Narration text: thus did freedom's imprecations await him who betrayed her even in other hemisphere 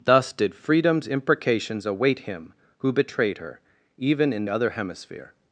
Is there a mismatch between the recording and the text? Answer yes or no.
no